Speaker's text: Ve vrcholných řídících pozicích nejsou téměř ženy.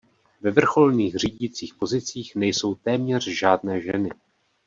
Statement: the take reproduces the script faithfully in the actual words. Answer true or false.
false